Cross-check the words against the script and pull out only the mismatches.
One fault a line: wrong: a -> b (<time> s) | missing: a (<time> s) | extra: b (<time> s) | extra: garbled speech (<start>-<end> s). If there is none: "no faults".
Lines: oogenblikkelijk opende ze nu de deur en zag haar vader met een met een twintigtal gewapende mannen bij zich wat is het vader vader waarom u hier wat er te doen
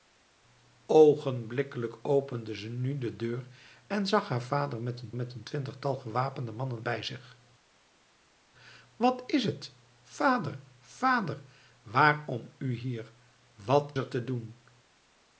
no faults